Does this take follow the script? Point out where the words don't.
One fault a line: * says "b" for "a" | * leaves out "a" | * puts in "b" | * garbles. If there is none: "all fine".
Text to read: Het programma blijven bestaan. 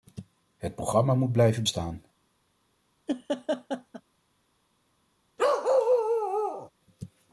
* puts in "moet"